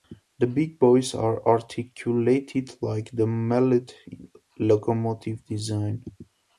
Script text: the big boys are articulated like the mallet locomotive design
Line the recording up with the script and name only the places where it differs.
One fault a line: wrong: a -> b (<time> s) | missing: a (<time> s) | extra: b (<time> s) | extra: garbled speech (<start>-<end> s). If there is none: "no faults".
no faults